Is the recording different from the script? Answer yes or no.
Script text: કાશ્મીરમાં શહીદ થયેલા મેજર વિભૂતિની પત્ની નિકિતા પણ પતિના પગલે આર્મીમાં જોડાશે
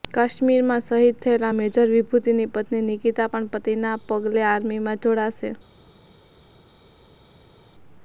no